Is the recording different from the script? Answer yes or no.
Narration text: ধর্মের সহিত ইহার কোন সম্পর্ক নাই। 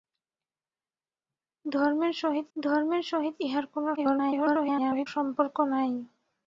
yes